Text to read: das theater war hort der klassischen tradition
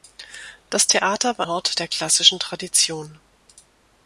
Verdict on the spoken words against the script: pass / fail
pass